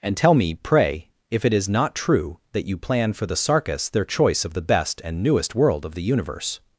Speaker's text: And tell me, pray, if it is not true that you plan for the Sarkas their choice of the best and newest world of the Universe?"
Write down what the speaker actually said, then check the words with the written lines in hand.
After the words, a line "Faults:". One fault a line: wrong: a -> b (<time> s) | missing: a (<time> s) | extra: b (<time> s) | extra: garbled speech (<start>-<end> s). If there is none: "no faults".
And tell me, pray, if it is not true that you plan for the Sarkas their choice of the best and newest world of the Universe?"
Faults:
no faults